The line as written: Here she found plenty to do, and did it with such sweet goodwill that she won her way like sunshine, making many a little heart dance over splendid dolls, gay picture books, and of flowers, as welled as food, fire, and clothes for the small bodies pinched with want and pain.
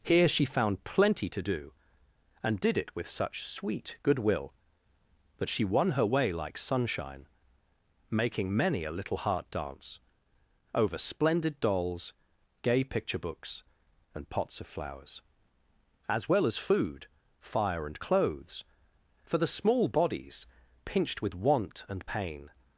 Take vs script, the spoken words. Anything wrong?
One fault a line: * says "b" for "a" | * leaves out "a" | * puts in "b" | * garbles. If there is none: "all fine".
* puts in "pots"
* says "well" for "welled"